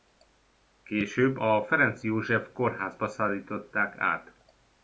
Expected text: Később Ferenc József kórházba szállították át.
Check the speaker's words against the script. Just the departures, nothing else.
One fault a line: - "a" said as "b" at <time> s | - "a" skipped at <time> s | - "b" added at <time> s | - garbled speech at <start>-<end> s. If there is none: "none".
- "a" added at 1.3 s